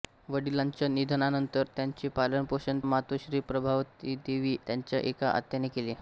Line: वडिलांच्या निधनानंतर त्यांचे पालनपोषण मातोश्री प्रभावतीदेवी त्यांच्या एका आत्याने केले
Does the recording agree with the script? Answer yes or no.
yes